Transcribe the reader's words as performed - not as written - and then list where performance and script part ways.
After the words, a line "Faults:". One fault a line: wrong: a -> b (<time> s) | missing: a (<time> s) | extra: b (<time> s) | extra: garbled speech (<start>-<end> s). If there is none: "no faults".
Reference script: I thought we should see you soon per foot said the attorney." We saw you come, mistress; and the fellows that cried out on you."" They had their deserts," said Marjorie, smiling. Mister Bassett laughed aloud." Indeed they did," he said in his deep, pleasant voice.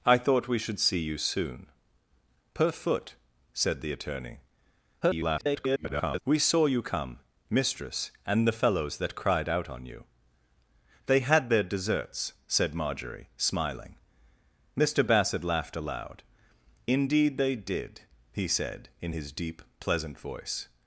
I thought we should see you soon per foot said the attorney." [garbled] We saw you come, mistress; and the fellows that cried out on you."" They had their deserts," said Marjorie, smiling. Mister Bassett laughed aloud." Indeed they did," he said in his deep, pleasant voice.
Faults:
extra: garbled speech (5.0-6.2 s)